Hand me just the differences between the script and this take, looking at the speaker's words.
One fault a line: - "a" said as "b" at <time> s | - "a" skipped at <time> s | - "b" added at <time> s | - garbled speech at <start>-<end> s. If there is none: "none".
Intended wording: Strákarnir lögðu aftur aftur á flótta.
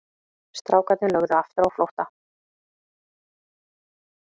- "aftur" skipped at 1.7 s